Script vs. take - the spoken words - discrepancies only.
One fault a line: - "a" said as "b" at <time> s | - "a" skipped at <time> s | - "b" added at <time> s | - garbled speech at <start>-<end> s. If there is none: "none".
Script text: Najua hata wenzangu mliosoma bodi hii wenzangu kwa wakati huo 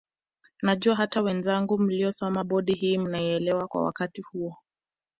- "wenzangu" said as "mnaielewa" at 3.0 s